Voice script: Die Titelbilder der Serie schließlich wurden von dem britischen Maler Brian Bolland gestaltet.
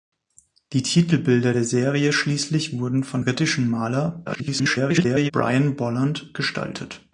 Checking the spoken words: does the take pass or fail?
fail